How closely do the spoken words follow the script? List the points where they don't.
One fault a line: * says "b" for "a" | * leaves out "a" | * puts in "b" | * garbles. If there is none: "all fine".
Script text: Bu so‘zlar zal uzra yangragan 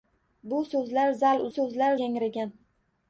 * says "so‘zlar" for "uzra"